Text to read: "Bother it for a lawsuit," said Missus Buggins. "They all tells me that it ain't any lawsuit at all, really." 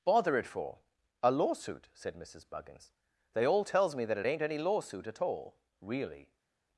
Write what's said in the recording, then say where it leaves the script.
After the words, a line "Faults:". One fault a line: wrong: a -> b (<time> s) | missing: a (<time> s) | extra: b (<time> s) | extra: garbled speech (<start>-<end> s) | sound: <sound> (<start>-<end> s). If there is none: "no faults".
"Bother it for a lawsuit," said Missus Buggins. "They all tells me that it ain't any lawsuit at all, really."
Faults:
no faults